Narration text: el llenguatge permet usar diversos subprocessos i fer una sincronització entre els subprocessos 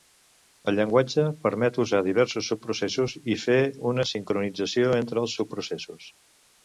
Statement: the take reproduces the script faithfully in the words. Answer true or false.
true